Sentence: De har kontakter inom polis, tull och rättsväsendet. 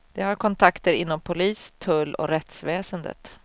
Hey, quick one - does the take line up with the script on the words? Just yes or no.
yes